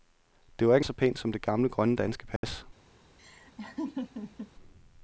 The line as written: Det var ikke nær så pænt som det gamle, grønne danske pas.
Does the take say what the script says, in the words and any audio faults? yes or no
no